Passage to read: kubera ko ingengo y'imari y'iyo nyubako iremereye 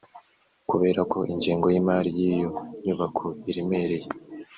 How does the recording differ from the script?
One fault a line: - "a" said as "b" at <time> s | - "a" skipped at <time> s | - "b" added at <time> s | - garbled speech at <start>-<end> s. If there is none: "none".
none